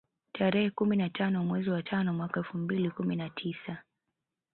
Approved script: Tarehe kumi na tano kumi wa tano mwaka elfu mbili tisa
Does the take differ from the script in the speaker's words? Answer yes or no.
yes